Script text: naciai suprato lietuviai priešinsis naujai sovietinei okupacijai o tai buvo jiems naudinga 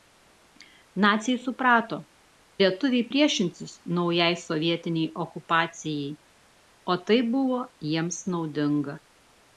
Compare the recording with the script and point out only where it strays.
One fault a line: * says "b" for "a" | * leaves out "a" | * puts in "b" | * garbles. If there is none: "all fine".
all fine